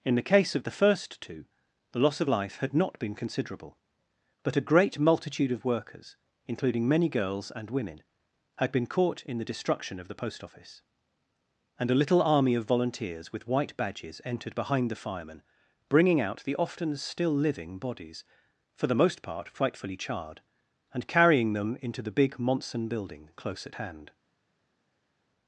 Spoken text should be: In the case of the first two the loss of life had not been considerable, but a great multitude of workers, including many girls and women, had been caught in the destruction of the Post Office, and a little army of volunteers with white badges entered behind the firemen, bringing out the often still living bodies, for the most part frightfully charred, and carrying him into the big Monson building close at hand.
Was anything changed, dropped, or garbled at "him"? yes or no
yes